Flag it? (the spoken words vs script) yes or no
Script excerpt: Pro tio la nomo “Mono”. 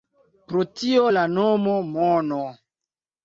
no